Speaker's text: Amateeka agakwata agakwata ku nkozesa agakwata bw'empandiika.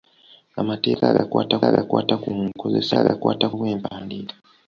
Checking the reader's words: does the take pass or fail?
pass